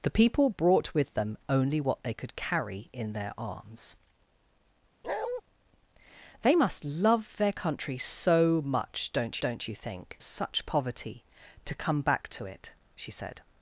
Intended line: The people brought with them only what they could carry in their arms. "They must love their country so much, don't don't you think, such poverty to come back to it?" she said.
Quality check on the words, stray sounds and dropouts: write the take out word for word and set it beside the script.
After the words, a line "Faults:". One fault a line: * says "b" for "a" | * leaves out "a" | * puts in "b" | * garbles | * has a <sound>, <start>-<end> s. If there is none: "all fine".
The people brought with them only what they could carry in their arms. "They must love their country so much, don't don't you think, such poverty to come back to it?" she said.
Faults:
* has a bark, 5.0-5.4 s